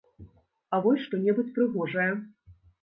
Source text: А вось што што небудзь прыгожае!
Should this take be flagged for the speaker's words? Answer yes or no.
yes